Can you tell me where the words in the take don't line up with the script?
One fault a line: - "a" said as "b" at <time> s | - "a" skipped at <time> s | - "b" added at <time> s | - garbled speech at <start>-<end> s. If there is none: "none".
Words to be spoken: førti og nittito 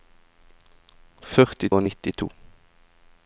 none